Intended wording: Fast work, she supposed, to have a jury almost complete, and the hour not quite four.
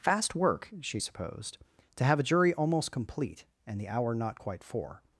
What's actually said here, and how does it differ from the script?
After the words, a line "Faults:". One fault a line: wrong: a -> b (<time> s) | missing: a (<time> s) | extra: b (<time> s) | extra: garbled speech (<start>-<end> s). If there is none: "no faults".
Fast work, she supposed, to have a jury almost complete, and the hour not quite four.
Faults:
no faults